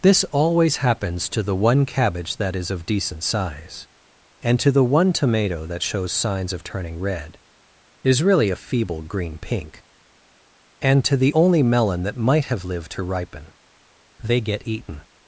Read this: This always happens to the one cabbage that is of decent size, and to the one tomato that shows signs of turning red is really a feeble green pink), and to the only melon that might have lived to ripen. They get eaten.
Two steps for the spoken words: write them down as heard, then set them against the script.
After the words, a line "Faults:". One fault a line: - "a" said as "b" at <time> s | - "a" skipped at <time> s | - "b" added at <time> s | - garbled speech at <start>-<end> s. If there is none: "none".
This always happens to the one cabbage that is of decent size, and to the one tomato that shows signs of turning red is really a feeble green pink), and to the only melon that might have lived to ripen. They get eaten.
Faults:
none